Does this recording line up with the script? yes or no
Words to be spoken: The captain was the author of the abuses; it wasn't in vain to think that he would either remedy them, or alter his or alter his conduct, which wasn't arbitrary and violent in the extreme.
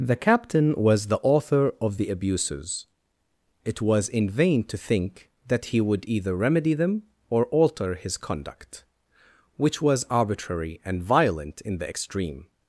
no